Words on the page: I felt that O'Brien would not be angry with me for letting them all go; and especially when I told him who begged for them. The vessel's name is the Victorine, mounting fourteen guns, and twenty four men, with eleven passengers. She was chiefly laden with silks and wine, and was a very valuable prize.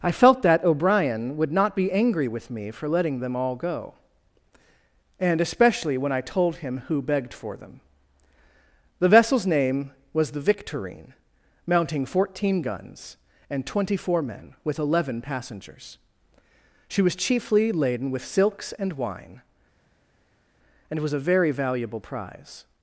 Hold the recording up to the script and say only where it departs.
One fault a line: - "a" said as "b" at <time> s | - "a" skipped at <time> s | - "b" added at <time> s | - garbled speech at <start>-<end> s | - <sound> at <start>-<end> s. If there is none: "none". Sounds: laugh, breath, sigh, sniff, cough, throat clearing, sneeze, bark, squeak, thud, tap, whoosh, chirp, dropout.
- "is" said as "was" at 10.1 s